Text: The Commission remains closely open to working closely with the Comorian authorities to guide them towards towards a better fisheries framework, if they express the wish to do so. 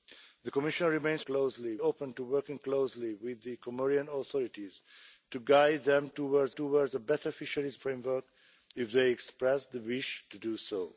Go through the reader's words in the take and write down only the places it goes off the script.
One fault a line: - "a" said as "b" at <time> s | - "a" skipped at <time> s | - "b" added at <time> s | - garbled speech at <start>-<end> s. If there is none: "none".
none